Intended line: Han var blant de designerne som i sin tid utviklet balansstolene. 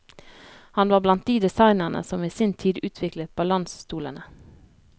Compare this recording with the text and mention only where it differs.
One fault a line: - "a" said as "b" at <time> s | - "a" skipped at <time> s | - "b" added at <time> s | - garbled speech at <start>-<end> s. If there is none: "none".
none